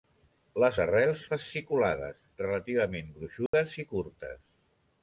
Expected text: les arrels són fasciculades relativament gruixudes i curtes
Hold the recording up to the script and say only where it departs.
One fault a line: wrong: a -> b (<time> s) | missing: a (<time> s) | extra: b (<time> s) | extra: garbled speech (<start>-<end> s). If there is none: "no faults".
missing: són (1.2 s)